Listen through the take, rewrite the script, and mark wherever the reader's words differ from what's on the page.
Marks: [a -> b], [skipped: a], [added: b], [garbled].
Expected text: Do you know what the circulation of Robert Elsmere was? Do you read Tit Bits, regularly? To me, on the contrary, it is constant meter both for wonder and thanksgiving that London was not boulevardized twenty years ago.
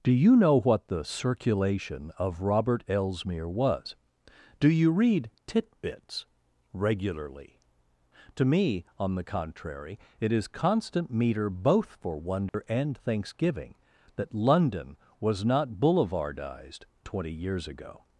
Do you know what the circulation of Robert Elsmere was? Do you read Tit Bits, regularly? To me, on the contrary, it is constant meter both for wonder and thanksgiving that London was not boulevardized twenty years ago.